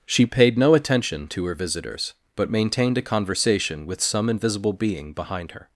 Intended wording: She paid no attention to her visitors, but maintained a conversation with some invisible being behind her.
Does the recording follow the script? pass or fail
pass